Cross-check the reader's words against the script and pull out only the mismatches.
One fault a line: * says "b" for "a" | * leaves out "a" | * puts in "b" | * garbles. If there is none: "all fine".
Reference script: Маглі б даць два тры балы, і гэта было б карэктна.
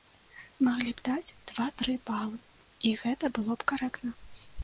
all fine